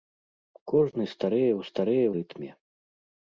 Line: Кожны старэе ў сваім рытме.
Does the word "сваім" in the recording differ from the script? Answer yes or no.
yes